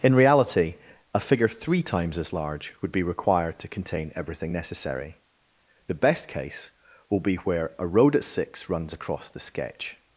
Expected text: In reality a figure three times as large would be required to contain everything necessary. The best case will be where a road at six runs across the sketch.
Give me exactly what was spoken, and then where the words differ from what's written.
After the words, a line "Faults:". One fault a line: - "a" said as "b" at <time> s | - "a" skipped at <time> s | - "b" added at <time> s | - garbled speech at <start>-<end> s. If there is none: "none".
In reality a figure three times as large would be required to contain everything necessary. The best case will be where a road at six runs across the sketch.
Faults:
none